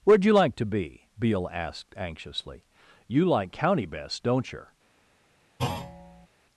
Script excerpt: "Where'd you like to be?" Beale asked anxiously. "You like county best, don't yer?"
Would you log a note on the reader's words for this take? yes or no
no